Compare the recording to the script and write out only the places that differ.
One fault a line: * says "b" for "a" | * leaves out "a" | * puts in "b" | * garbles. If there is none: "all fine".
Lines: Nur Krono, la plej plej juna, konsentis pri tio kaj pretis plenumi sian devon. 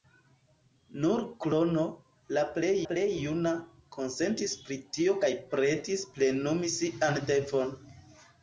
all fine